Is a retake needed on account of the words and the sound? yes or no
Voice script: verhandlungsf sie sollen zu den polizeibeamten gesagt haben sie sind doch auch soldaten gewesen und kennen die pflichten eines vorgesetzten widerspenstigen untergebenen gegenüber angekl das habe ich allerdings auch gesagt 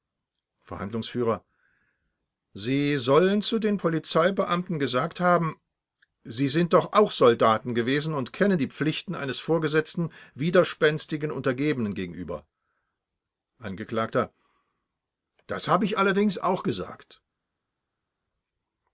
no